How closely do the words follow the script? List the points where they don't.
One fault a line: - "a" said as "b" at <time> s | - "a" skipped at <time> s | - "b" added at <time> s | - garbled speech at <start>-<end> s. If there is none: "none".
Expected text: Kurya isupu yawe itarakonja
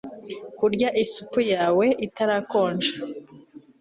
none